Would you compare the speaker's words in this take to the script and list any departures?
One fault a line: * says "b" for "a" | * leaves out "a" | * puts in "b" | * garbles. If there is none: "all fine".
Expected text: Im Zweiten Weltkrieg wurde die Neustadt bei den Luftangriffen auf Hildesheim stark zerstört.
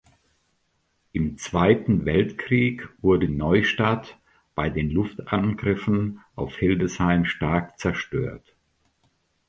* leaves out "die"